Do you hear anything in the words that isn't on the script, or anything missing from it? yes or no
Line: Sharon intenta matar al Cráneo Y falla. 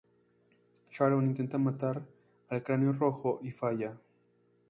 yes